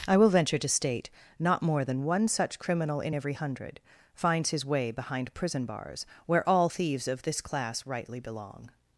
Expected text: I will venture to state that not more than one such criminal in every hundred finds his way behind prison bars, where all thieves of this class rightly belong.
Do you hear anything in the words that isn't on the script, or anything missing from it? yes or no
yes